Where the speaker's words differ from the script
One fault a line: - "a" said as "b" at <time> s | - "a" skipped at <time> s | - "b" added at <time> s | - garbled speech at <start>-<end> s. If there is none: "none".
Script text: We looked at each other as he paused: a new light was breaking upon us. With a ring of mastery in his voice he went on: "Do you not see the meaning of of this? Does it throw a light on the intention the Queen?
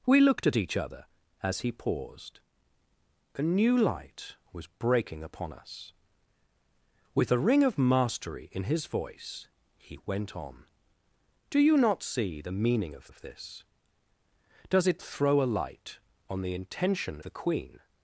none